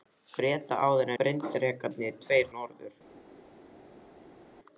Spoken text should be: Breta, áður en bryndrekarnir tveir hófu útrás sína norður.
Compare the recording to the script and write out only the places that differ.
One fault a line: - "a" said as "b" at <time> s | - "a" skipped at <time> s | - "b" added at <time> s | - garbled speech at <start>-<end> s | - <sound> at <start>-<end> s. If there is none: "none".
- "en" skipped at 1.1 s
- "hófu útrás sína" skipped at 2.5 s